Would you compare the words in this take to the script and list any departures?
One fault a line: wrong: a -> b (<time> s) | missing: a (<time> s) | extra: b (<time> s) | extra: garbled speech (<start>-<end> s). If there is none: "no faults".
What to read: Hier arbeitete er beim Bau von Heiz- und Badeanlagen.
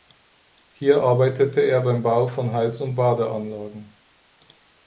no faults